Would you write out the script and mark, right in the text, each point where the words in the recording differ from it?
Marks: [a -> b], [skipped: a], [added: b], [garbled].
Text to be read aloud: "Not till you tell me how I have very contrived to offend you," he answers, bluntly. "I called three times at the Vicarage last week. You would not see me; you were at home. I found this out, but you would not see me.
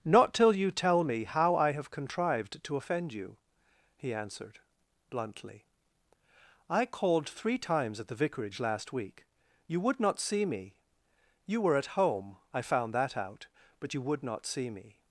"Not till you tell me how I have [skipped: very] contrived to offend you," he [answers, -> answered] bluntly. "I called three times at the Vicarage last week. You would not see me; you were at home. I found [this -> that] out, but you would not see me.